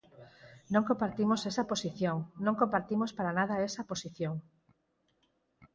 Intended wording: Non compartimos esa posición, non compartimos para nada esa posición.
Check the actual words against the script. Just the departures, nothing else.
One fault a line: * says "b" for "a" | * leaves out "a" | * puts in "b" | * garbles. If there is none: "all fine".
all fine